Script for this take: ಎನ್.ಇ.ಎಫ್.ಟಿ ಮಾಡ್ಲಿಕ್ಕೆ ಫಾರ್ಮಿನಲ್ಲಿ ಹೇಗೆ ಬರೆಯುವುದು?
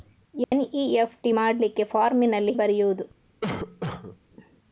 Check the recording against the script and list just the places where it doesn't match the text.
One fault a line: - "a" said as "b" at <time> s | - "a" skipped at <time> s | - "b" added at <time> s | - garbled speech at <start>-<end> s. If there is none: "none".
- "ಹೇಗೆ" skipped at 2.5 s